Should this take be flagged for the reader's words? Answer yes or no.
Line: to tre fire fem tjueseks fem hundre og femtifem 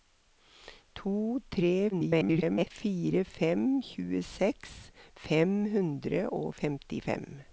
yes